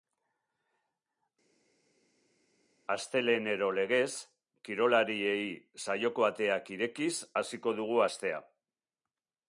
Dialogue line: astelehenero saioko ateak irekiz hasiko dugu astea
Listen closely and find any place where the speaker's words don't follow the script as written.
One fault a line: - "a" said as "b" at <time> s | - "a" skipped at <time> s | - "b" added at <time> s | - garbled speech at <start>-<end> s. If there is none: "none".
- "legez kirolariei" added at 3.8 s